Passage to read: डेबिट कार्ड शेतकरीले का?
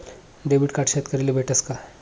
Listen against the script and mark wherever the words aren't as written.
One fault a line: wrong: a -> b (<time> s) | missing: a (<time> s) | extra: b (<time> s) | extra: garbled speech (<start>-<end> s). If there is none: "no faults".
extra: भेटस (1.3 s)